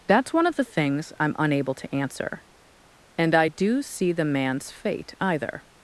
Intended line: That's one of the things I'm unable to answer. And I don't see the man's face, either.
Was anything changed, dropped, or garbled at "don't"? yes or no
yes